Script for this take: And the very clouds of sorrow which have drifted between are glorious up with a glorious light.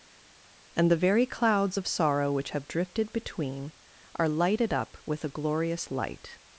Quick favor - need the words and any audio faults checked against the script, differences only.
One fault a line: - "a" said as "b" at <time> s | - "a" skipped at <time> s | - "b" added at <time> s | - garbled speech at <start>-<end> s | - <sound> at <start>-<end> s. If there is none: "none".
- "glorious" said as "lighted" at 4.3 s